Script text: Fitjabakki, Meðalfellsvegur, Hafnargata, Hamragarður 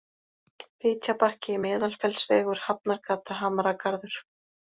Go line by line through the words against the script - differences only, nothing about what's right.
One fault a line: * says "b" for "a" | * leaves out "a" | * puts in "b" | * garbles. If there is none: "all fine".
all fine